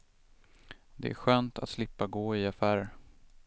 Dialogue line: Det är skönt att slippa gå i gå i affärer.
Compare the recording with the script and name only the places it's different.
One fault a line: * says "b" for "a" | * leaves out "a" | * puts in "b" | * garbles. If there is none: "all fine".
* leaves out "gå i"